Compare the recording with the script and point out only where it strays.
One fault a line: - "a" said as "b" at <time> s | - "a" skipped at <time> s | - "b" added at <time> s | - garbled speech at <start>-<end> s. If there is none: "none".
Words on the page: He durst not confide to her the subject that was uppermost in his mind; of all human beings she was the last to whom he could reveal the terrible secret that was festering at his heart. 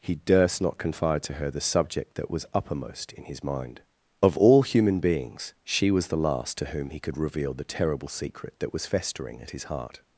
none